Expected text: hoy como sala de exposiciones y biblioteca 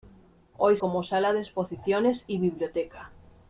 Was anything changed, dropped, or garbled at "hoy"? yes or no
no